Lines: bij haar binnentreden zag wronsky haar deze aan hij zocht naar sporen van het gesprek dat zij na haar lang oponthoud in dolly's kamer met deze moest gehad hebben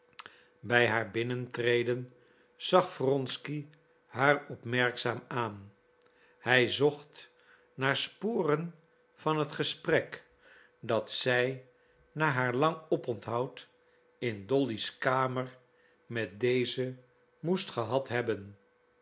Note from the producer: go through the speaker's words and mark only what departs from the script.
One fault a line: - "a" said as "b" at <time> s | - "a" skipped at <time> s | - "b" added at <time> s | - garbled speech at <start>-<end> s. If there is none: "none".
- "deze" said as "opmerkzaam" at 4.5 s